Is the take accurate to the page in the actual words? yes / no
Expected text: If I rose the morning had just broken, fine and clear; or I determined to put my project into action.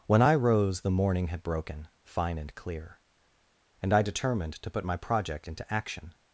no